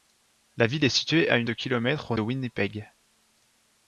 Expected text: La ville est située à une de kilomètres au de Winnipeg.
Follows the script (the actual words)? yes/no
yes